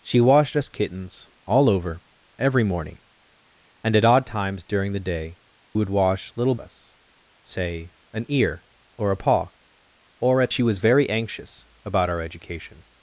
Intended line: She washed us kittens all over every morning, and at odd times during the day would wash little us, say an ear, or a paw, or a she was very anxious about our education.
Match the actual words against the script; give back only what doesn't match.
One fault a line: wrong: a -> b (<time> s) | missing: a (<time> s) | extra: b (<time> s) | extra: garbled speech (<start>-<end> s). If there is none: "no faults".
no faults